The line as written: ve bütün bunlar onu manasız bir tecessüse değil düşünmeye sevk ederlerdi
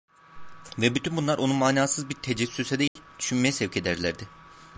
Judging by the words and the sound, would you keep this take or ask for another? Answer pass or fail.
fail